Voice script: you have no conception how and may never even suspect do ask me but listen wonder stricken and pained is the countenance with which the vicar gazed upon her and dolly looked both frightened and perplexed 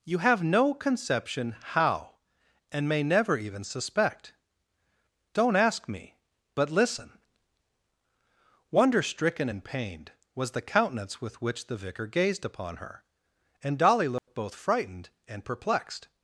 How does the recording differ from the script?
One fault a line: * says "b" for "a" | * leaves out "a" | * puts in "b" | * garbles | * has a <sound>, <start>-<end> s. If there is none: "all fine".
* says "don't" for "do"
* says "was" for "is"
* has a dropout, 14.2-14.3 s